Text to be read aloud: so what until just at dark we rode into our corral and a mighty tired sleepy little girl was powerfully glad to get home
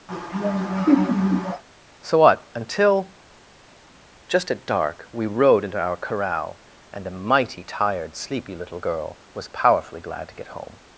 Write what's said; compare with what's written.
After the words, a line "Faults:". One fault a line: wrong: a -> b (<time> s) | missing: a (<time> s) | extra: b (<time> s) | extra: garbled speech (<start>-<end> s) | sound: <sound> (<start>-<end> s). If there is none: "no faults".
so what until just at dark we rode into our corral and a mighty tired sleepy little girl was powerfully glad to get home
Faults:
sound: laugh (0.1-1.6 s)